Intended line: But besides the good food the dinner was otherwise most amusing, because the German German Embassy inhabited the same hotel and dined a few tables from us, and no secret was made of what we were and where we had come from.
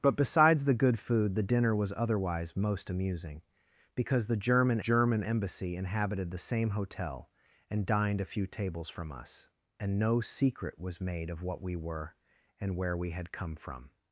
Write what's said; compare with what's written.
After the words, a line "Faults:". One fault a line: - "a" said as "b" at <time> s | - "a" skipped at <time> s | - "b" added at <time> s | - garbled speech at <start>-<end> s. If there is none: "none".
But besides the good food the dinner was otherwise most amusing, because the German German Embassy inhabited the same hotel and dined a few tables from us, and no secret was made of what we were and where we had come from.
Faults:
none